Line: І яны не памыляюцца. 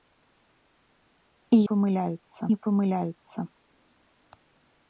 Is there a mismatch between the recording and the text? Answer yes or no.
yes